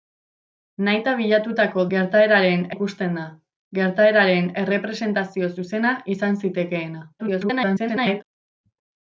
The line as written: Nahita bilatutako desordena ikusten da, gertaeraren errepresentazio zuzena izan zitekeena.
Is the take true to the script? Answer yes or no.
no